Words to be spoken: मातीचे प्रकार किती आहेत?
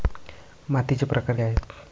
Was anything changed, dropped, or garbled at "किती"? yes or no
yes